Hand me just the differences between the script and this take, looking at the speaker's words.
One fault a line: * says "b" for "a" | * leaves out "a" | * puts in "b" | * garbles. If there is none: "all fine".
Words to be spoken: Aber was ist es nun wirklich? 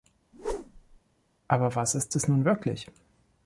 all fine